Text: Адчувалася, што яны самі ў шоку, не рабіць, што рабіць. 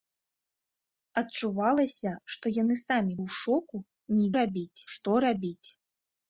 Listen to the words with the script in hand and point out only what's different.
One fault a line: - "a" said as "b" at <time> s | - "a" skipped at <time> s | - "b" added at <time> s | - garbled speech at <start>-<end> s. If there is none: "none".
none